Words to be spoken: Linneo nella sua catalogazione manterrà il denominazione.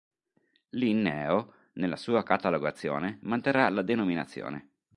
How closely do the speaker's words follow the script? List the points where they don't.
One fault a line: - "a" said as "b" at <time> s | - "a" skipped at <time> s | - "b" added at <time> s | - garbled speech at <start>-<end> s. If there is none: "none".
- "il" said as "la" at 3.7 s